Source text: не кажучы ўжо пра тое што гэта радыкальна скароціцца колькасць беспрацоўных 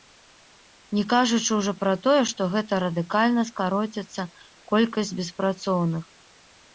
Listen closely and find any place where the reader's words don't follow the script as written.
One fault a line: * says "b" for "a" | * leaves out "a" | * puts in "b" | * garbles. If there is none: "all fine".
all fine